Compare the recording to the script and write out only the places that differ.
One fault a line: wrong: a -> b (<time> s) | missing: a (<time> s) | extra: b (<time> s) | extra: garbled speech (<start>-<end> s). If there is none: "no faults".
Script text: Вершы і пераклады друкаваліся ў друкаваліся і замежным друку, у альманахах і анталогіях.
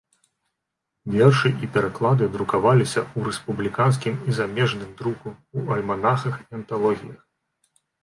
wrong: друкаваліся -> рэспубліканскім (3.3 s)